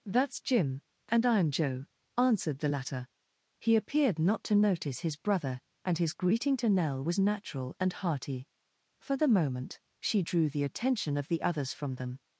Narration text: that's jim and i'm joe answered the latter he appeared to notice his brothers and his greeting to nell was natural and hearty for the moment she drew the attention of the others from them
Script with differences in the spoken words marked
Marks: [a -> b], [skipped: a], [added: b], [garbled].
that's jim and i'm joe answered the latter he appeared [added: not] to notice his [brothers -> brother] and his greeting to nell was natural and hearty for the moment she drew the attention of the others from them